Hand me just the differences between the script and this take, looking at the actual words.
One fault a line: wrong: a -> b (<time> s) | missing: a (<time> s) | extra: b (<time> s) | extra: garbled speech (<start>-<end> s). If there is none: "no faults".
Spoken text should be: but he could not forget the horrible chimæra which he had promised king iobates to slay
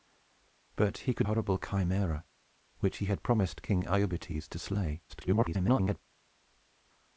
missing: not forget the (1.3 s)
extra: garbled speech (5.1-6.0 s)